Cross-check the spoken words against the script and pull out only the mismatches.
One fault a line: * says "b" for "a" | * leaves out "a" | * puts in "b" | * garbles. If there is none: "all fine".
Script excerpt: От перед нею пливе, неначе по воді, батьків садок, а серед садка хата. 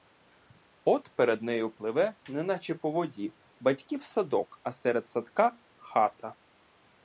all fine